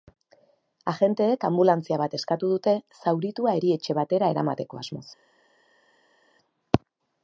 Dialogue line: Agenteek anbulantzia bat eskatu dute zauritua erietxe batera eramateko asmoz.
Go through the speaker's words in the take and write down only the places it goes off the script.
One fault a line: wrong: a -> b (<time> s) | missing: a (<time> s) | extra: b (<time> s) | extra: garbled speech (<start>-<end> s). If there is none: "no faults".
no faults